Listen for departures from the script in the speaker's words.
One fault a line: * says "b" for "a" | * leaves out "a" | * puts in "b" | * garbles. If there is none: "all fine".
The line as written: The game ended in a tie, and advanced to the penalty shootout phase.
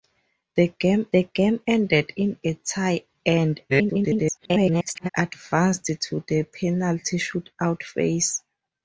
* puts in "the game"
* garbles